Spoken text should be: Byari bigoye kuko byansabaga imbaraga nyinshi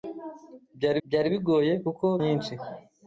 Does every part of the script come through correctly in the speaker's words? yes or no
no